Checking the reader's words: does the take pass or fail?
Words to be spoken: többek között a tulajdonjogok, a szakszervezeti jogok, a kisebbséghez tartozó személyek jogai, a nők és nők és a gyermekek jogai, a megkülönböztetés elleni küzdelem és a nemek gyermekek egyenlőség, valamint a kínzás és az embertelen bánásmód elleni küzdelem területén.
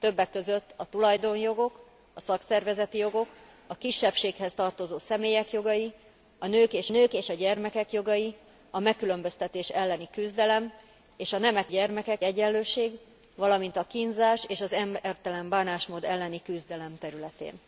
pass